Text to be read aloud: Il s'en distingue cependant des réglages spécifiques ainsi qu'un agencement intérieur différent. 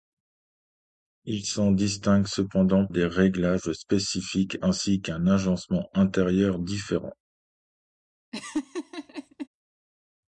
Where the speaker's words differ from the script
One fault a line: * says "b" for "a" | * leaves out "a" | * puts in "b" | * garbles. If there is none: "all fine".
all fine